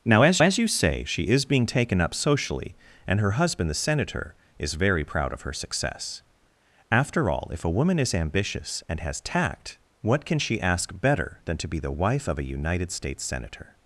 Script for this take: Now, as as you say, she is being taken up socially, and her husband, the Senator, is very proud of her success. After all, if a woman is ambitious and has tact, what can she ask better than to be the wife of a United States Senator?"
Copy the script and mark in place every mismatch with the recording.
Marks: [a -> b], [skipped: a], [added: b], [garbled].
Now, as as you say, she is being taken up socially, and her husband, the Senator, is very proud of her success. After all, if a woman is ambitious and has tact, what can she ask better than to be the wife of a United States Senator?"